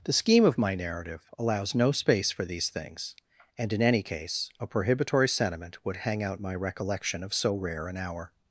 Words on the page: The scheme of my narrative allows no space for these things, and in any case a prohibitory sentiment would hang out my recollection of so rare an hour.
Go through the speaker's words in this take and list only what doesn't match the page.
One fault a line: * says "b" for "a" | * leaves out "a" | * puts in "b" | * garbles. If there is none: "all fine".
all fine